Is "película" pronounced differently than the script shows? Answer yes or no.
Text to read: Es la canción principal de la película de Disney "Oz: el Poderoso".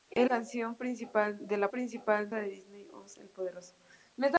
yes